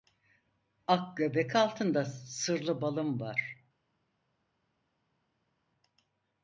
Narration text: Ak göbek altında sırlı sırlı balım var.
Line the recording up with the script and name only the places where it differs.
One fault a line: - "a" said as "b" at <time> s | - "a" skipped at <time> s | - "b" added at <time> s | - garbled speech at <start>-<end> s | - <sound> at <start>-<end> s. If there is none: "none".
- "sırlı" skipped at 2.8 s